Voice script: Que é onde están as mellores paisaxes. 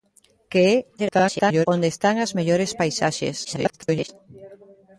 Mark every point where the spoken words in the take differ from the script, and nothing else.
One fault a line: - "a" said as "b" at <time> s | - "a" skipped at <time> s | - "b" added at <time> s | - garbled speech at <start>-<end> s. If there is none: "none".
- garbled speech at 1.0-1.7 s
- garbled speech at 3.4-4.1 s